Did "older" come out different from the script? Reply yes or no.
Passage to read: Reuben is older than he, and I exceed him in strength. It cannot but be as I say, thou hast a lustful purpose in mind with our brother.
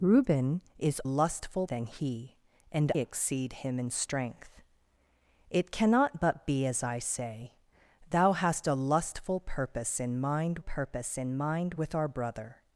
yes